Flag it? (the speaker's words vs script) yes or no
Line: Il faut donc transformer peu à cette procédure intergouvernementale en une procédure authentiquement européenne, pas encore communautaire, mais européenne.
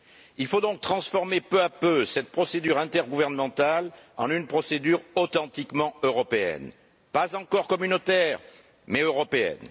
yes